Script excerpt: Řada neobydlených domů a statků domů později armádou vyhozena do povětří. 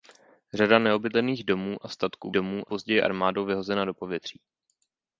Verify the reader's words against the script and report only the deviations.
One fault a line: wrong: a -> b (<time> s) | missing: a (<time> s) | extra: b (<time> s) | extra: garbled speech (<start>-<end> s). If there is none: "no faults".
no faults